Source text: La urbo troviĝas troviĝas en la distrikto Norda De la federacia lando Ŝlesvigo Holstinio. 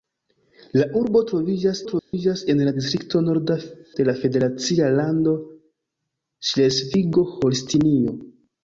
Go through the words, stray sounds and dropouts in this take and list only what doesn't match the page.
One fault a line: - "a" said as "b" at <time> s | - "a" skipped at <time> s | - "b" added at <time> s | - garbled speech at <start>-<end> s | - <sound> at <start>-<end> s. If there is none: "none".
- dropout at 2.0-2.1 s